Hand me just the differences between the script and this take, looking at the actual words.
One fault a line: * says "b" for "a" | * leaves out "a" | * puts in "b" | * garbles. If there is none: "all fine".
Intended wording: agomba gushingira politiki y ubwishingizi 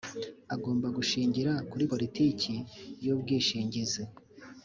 * puts in "kuri"